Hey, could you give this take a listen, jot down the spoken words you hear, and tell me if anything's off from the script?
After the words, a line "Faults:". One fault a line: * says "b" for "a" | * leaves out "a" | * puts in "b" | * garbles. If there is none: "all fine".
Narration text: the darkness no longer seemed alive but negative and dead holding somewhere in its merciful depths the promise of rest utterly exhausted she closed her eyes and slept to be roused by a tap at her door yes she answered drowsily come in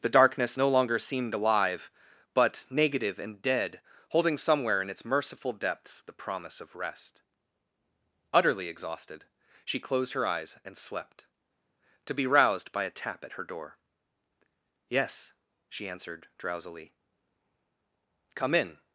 the darkness no longer seemed alive but negative and dead holding somewhere in its merciful depths the promise of rest utterly exhausted she closed her eyes and slept to be roused by a tap at her door yes she answered drowsily come in
Faults:
all fine